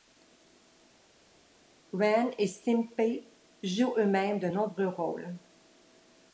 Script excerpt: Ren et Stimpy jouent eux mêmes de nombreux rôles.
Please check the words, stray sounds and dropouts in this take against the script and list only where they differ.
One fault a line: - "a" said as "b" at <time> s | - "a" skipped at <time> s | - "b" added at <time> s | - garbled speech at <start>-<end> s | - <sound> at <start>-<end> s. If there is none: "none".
none